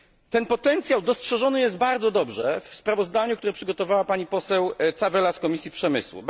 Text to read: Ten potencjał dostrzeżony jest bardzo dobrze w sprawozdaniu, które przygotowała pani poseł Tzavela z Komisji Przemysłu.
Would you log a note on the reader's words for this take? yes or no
no